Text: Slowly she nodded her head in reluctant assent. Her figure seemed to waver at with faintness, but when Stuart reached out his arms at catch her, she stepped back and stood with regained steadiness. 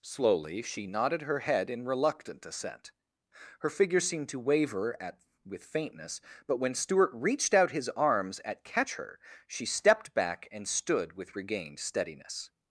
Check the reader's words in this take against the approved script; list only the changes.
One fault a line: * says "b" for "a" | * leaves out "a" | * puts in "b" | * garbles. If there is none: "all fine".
all fine